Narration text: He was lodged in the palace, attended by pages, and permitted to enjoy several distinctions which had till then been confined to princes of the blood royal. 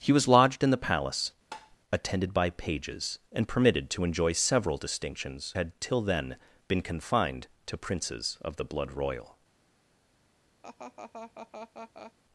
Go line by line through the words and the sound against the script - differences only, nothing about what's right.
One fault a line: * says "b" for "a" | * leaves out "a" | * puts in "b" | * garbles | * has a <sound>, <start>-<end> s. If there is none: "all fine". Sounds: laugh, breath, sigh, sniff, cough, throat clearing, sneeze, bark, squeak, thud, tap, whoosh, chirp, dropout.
* has a tap, 1.5-1.8 s
* leaves out "which"
* has a laugh, 10.6-12.1 s